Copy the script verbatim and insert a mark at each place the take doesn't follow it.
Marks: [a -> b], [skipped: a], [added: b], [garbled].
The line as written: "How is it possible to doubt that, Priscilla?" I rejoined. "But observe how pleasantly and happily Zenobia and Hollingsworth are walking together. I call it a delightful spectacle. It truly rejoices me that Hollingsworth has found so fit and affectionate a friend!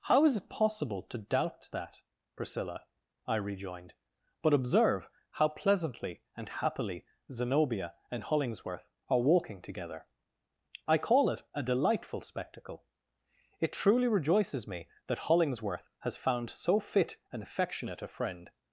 "How is it possible to doubt that, Priscilla?" I rejoined. "But observe how pleasantly and happily Zenobia and Hollingsworth are walking together. I call it a delightful spectacle. It truly rejoices me that Hollingsworth has found so fit and affectionate a friend!